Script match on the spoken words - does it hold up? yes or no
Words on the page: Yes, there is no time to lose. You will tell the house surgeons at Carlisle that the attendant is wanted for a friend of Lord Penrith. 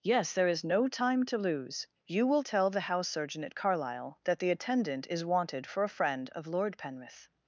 no